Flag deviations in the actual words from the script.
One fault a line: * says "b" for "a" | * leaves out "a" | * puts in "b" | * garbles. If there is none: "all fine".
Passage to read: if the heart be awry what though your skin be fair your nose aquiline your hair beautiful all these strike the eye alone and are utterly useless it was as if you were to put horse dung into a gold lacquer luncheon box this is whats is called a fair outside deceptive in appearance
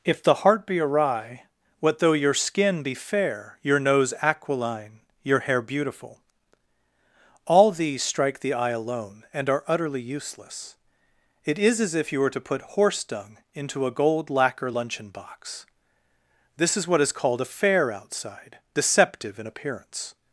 * says "is" for "was"
* says "what" for "whats"